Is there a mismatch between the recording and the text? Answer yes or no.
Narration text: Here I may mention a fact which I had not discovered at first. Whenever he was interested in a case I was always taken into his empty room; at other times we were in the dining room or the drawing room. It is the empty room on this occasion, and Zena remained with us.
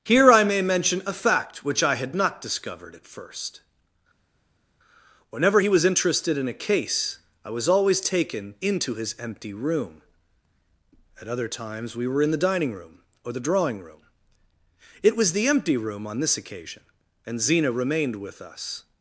yes